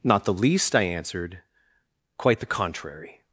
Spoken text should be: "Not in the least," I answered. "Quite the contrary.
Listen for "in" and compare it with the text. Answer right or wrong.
wrong